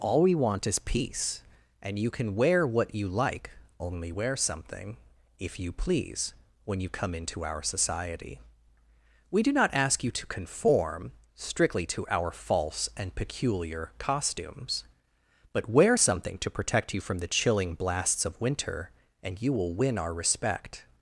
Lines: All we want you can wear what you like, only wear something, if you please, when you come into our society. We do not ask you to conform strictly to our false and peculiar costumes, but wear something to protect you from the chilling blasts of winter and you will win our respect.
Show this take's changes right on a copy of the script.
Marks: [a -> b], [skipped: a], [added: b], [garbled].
All we want [added: is peace and] you can wear what you like, only wear something, if you please, when you come into our society. We do not ask you to conform strictly to our false and peculiar costumes, but wear something to protect you from the chilling blasts of winter and you will win our respect.